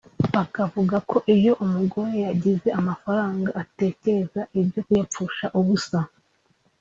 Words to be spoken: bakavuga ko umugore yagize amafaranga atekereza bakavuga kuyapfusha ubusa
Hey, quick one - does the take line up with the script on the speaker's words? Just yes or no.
no